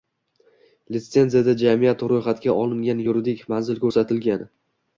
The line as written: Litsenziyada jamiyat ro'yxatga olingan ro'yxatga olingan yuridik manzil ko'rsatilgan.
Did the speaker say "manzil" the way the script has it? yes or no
yes